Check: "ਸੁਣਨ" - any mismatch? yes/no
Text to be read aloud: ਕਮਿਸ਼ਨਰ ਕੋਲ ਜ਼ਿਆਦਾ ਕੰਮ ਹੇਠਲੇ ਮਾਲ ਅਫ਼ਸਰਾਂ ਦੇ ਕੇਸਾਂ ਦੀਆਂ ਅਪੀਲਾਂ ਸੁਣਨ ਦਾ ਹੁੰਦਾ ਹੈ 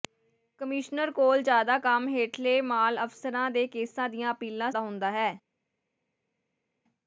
yes